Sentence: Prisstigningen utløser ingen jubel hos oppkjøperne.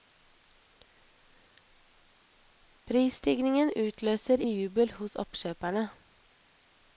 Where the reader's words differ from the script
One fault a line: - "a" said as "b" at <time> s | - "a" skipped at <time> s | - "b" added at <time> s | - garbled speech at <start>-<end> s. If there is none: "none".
- "ingen" skipped at 4.4 s